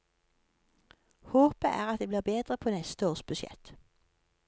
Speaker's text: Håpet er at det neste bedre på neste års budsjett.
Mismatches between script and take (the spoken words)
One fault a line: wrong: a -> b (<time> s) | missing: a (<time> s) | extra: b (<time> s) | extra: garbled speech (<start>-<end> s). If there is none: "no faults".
wrong: neste -> blir (2.1 s)